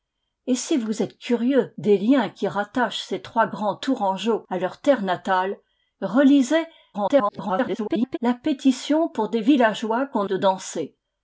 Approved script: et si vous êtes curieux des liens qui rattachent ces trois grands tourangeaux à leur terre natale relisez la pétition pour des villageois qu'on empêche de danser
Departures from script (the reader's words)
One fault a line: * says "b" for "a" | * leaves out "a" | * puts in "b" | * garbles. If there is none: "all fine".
* garbles
* leaves out "empêche"